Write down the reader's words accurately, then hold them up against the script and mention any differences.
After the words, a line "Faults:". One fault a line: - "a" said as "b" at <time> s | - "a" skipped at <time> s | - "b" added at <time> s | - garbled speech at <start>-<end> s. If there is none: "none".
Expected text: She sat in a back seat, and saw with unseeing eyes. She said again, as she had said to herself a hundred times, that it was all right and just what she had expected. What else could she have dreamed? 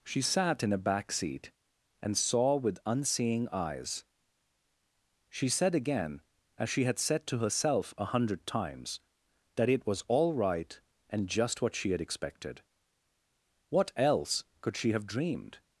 She sat in a back seat, and saw with unseeing eyes. She said again, as she had said to herself a hundred times, that it was all right and just what she had expected. What else could she have dreamed?
Faults:
none